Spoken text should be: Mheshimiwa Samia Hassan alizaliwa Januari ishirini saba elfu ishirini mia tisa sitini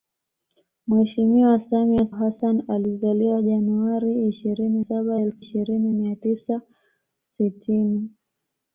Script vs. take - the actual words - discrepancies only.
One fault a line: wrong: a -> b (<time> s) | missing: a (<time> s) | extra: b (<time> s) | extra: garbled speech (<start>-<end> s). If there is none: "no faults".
no faults